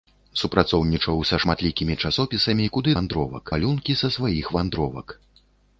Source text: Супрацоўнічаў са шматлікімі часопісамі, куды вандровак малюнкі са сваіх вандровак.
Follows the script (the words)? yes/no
yes